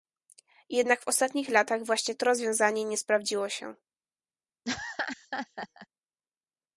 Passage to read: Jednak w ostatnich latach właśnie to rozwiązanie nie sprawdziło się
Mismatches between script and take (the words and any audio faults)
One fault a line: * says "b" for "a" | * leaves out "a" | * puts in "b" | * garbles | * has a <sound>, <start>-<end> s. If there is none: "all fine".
* has a laugh, 4.6-5.9 s